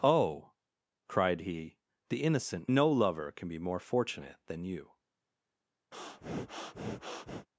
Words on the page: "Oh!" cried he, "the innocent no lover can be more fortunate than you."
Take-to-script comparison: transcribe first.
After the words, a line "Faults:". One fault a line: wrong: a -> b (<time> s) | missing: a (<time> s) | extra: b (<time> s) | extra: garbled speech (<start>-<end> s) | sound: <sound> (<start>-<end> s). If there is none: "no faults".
"Oh!" cried he, "the innocent no lover can be more fortunate than you."
Faults:
sound: breath (5.9-7.5 s)